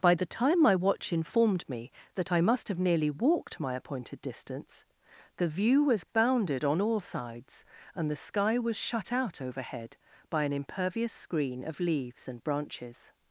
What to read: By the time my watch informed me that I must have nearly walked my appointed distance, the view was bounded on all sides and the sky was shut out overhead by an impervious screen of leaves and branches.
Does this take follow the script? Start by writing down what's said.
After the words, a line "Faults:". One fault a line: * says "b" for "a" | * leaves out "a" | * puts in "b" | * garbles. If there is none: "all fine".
By the time my watch informed me that I must have nearly walked my appointed distance, the view was bounded on all sides and the sky was shut out overhead by an impervious screen of leaves and branches.
Faults:
all fine